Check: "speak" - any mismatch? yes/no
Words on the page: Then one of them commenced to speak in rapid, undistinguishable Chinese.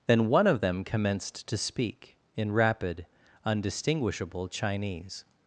no